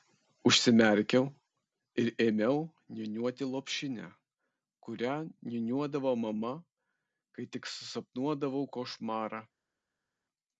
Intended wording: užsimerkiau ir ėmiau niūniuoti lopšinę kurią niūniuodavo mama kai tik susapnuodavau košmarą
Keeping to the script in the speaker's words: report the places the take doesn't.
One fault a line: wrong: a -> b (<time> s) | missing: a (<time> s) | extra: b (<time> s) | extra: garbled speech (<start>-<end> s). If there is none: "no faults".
no faults